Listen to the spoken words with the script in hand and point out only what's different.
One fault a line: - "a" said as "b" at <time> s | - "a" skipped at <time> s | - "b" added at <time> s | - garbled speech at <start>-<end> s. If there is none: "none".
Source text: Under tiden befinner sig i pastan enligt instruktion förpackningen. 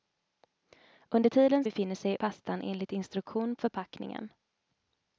none